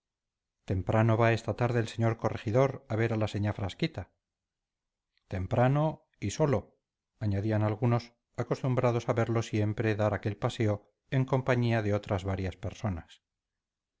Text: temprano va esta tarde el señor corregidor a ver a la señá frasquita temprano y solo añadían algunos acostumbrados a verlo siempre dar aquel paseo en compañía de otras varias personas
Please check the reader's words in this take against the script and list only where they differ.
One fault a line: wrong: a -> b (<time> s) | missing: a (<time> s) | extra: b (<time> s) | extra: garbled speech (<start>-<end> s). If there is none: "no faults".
no faults